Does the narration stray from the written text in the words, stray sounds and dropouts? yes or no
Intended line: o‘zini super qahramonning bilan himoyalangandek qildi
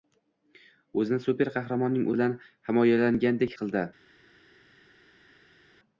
no